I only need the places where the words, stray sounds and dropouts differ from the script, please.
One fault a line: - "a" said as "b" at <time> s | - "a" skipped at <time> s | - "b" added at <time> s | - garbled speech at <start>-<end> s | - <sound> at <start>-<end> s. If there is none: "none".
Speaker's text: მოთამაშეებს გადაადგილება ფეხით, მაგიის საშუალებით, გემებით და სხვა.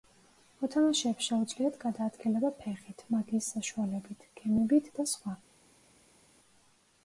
- "შეუძლიათ" added at 1.3 s